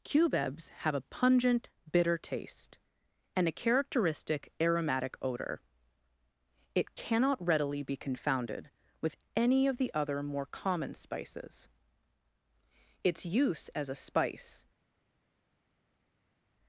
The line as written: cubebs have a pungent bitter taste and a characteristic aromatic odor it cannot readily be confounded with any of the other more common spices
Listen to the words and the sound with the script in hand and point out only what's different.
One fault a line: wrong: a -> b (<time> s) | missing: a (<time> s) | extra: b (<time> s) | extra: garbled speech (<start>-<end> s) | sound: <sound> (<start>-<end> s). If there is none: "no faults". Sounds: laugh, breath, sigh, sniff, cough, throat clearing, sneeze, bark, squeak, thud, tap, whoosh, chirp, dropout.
extra: its use as a spice (13.0 s)